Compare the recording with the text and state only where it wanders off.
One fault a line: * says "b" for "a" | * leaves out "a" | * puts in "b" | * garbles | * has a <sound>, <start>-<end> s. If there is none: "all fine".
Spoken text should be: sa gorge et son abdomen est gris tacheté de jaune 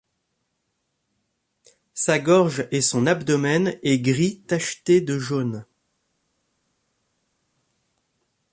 all fine